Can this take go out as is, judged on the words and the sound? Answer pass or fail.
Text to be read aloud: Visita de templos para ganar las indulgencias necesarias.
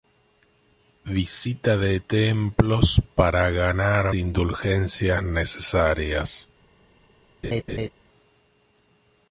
fail